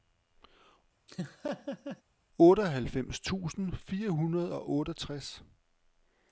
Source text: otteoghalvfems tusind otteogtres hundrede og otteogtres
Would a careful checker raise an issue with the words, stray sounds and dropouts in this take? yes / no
yes